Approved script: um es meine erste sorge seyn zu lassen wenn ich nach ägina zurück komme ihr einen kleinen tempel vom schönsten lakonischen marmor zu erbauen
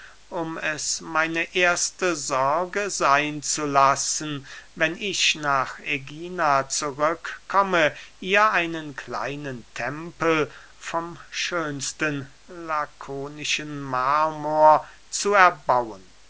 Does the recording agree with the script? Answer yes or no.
yes